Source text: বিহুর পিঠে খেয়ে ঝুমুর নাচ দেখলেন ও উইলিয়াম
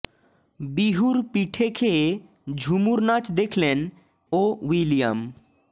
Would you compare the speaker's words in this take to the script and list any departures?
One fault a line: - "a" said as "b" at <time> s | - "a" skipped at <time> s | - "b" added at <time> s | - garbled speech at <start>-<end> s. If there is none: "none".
none